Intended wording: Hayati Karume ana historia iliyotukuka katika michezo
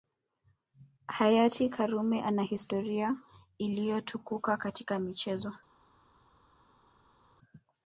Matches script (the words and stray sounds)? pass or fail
pass